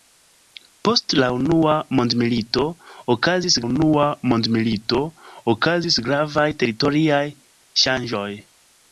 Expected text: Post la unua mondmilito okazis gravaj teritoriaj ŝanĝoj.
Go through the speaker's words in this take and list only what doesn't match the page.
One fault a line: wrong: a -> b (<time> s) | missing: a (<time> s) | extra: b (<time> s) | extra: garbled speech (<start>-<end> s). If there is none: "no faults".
extra: unua mondmilito okazis (3.6 s)